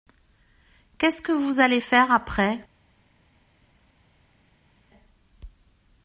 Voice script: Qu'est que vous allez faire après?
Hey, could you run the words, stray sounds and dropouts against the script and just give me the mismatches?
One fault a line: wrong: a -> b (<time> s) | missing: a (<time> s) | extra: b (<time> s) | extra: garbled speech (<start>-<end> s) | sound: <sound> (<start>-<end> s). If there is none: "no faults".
extra: ce (1.1 s)